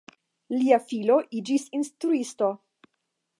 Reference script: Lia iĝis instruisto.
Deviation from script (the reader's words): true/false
true